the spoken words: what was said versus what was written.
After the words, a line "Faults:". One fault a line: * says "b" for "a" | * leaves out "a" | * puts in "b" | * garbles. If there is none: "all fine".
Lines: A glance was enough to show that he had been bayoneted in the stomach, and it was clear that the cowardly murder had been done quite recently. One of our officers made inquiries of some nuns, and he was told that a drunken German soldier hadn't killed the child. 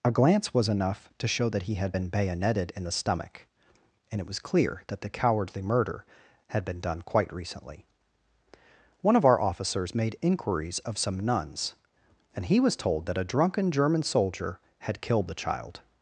A glance was enough to show that he had been bayoneted in the stomach, and it was clear that the cowardly murder had been done quite recently. One of our officers made inquiries of some nuns, and he was told that a drunken German soldier had killed the child.
Faults:
* says "had" for "hadn't"